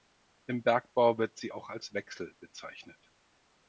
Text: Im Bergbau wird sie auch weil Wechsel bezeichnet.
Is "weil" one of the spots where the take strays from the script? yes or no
yes